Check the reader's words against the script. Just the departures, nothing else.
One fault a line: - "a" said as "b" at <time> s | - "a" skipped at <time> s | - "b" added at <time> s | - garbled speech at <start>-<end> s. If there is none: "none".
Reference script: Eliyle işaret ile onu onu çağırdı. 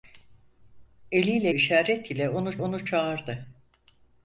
none